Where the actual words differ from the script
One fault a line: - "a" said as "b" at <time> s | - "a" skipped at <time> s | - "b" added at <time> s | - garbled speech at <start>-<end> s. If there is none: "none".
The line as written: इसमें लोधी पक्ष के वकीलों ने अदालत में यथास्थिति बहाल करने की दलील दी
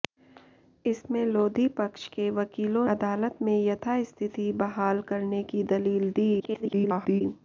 - "ने" skipped at 2.9 s
- garbled speech at 6.4-7.2 s